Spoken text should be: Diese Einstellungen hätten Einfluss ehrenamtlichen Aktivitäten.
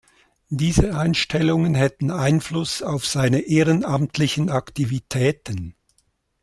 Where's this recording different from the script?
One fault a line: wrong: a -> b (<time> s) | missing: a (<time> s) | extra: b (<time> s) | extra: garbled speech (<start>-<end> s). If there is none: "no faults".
extra: auf seine (2.8 s)